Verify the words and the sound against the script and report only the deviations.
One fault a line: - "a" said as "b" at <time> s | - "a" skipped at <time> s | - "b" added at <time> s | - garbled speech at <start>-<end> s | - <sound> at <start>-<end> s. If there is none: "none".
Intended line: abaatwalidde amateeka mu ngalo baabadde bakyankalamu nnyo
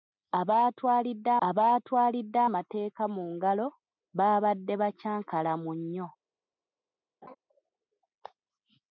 - "abaatwalidde" added at 1.5 s
- laugh at 7.2-7.4 s